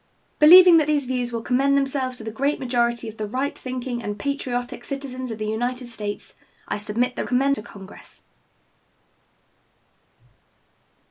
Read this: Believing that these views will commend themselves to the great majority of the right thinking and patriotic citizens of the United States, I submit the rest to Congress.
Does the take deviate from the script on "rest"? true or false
true